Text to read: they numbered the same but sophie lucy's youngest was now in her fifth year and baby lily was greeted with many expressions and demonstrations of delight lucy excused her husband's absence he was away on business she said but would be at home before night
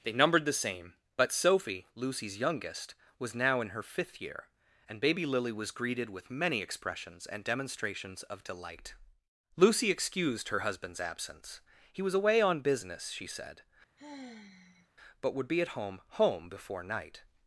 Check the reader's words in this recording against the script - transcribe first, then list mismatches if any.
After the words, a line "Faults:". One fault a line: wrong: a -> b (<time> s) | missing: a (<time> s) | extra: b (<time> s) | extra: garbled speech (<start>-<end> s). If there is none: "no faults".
they numbered the same but sophie lucy's youngest was now in her fifth year and baby lily was greeted with many expressions and demonstrations of delight lucy excused her husband's absence he was away on business she said but would be at home home before night
Faults:
extra: home (16.2 s)